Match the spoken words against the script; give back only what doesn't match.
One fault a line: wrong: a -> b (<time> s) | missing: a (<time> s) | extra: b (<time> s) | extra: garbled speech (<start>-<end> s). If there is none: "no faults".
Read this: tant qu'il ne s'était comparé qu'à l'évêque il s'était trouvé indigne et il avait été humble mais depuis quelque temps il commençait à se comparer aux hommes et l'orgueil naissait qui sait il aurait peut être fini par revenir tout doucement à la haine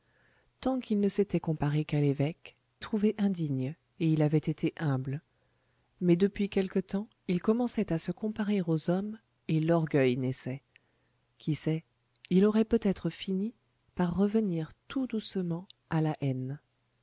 missing: il s'était (2.6 s)